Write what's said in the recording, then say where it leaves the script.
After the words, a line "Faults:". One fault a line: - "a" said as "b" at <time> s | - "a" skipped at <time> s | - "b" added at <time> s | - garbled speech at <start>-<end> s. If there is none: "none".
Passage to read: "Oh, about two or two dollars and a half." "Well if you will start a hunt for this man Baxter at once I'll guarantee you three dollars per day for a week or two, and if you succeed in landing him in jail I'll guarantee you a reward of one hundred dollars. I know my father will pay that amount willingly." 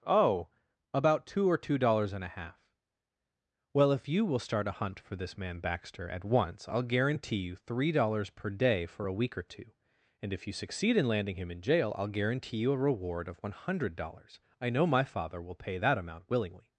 "Oh, about two or two dollars and a half." "Well if you will start a hunt for this man Baxter at once I'll guarantee you three dollars per day for a week or two, and if you succeed in landing him in jail I'll guarantee you a reward of one hundred dollars. I know my father will pay that amount willingly."
Faults:
none